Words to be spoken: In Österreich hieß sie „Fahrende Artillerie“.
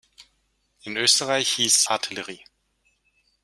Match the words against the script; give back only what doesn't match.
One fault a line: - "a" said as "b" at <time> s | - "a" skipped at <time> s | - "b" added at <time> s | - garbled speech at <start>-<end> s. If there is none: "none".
- "sie Fahrende" skipped at 1.8 s